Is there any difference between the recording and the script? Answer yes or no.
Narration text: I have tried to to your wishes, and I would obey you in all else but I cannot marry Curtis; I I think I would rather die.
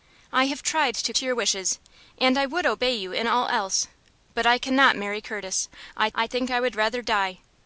no